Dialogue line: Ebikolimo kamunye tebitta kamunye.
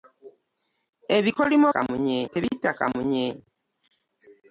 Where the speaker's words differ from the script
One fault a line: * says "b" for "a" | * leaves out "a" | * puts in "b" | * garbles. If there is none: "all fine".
all fine